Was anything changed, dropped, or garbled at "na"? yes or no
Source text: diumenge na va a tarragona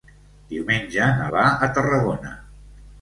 no